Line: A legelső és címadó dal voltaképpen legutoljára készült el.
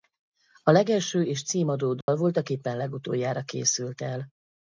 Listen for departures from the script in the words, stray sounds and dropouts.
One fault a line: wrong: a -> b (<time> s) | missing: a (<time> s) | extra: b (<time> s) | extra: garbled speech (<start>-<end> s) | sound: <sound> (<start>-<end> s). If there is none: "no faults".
sound: dropout (2.0-2.1 s)